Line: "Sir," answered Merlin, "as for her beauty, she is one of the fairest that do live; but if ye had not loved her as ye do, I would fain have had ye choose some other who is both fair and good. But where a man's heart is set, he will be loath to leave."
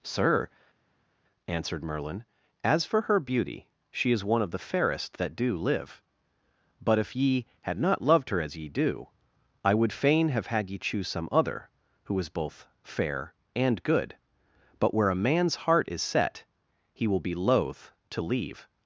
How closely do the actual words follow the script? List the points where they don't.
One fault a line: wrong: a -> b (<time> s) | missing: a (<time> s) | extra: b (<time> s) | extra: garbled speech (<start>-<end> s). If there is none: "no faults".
no faults